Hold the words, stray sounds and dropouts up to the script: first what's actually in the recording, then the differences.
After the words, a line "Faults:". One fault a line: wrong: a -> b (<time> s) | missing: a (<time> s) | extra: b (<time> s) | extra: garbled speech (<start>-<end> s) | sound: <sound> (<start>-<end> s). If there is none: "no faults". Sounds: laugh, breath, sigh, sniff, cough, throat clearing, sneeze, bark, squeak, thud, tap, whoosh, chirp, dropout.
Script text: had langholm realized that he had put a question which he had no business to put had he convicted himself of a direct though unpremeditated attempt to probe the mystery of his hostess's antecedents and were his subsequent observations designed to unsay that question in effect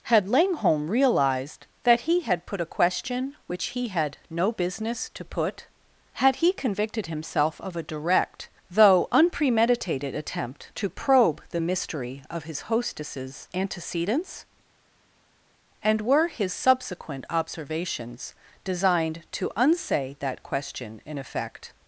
had langholm realized that he had put a question which he had no business to put had he convicted himself of a direct though unpremeditated attempt to probe the mystery of his hostess's antecedents and were his subsequent observations designed to unsay that question in effect
Faults:
no faults